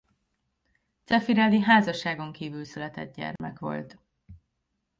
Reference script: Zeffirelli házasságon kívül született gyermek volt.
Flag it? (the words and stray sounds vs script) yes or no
yes